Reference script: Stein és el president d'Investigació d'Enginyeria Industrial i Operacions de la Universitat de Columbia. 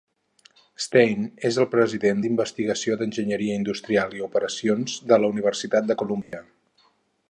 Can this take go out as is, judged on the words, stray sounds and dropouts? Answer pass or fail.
fail